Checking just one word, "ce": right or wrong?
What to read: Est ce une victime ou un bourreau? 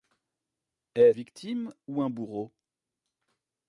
wrong